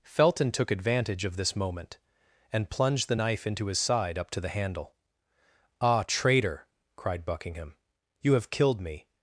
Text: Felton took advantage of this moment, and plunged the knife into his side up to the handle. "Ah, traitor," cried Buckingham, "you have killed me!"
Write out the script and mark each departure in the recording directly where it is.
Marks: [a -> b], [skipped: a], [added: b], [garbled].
Felton took advantage of this moment, and plunged the knife into his side up to the handle. "Ah, traitor," cried Buckingham, "you have killed me!"